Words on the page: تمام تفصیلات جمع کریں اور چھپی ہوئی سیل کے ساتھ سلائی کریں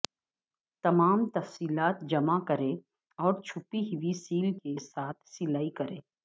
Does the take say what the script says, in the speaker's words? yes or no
yes